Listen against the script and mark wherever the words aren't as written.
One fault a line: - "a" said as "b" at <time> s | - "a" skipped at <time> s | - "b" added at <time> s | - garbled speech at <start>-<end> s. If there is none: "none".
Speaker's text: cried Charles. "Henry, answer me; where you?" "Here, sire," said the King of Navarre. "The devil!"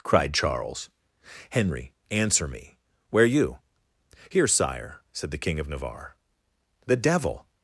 none